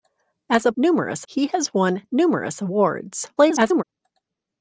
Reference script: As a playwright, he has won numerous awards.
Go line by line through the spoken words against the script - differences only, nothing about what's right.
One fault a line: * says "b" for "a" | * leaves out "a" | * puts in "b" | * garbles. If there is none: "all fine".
* says "numerous" for "playwright"
* garbles